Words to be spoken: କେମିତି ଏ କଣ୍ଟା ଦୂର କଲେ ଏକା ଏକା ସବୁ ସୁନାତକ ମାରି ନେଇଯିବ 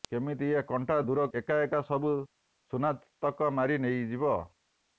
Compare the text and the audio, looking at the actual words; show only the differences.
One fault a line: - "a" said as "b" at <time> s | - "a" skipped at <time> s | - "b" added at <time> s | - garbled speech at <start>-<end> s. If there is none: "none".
- "କଲେ" skipped at 1.3 s